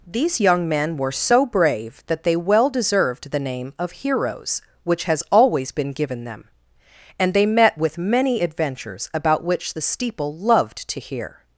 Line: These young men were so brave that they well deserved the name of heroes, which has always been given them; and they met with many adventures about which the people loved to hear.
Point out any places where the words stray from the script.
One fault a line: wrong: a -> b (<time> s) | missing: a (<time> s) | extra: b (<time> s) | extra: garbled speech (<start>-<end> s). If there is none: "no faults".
wrong: people -> steeple (9.8 s)